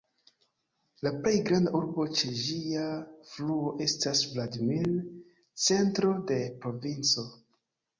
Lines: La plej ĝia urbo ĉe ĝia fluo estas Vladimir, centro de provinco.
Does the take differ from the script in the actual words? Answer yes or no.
yes